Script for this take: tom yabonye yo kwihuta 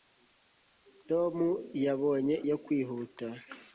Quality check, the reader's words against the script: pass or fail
pass